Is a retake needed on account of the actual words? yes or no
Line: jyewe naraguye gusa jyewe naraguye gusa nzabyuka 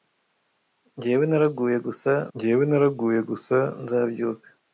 no